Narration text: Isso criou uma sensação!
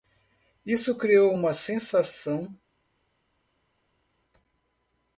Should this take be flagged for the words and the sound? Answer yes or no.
no